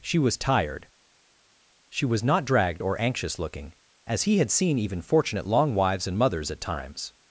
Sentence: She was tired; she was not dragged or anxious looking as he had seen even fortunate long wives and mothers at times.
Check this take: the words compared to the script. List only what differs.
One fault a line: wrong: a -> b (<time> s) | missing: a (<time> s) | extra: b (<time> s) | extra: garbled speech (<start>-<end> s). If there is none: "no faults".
no faults